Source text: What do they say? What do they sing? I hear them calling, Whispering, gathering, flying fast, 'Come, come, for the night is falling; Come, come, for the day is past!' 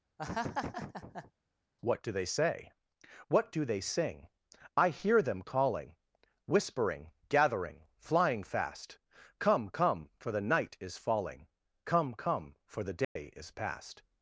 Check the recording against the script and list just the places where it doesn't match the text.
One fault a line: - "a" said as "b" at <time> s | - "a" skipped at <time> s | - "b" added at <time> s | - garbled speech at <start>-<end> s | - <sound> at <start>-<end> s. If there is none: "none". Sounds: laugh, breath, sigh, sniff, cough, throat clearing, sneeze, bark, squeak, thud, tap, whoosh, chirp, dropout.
- laugh at 0.2-1.3 s
- dropout at 13.0-13.2 s